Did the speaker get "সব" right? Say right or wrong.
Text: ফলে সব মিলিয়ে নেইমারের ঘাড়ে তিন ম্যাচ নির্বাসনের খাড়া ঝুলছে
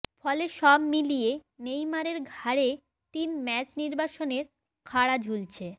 right